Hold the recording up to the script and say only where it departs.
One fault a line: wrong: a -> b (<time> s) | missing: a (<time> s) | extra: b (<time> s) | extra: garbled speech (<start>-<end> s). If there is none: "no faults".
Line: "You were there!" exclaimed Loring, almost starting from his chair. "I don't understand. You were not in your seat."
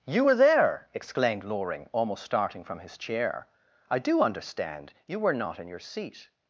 wrong: don't -> do (4.0 s)